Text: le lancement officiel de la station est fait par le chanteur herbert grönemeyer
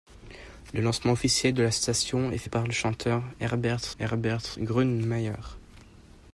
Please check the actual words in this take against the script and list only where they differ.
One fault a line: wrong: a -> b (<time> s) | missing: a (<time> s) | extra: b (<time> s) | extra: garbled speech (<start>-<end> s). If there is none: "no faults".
extra: herbert (4.0 s)